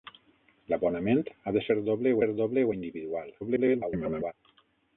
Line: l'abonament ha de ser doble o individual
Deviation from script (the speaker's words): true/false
true